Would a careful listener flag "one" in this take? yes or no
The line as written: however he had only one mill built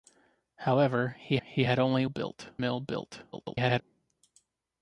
yes